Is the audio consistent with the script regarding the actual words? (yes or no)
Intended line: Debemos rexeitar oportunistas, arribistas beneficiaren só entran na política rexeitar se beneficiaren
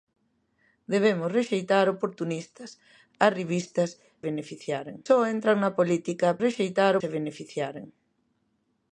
yes